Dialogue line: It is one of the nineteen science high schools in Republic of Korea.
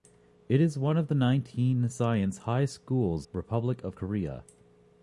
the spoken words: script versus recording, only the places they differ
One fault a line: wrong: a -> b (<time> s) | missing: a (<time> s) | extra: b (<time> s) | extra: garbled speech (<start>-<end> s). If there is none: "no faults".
missing: in (3.3 s)